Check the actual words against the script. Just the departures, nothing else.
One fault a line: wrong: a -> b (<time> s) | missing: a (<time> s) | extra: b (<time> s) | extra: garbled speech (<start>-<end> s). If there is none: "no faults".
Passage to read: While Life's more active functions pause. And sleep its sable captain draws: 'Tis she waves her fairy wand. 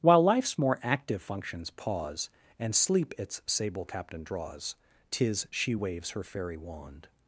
no faults